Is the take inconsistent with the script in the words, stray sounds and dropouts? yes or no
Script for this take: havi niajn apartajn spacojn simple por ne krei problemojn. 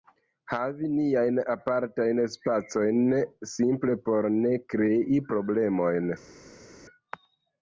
no